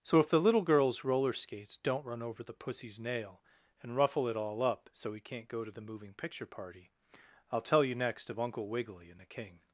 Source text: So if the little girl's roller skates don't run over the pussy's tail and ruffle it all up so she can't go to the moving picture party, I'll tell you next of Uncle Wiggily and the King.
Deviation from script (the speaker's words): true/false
true